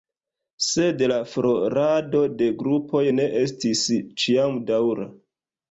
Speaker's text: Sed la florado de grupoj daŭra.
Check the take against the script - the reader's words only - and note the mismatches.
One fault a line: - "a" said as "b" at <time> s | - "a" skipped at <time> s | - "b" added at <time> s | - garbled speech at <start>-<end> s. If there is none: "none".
- "ne estis ĉiam" added at 3.2 s